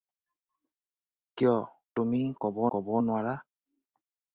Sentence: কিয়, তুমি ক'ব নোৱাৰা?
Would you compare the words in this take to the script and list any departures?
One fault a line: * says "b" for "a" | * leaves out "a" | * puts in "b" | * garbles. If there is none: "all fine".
* puts in "ক'ব"